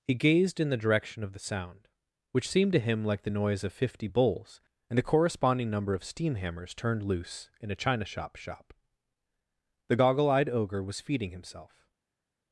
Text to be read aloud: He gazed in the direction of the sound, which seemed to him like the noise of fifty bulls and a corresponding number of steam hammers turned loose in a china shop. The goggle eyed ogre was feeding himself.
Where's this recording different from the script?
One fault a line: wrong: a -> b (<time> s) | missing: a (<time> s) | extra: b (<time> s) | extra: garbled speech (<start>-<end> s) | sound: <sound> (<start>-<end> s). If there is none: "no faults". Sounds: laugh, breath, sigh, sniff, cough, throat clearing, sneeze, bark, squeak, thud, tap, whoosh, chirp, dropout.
extra: shop (8.3 s)